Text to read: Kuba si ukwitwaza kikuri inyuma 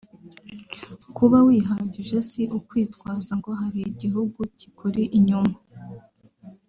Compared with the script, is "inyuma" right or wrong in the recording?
right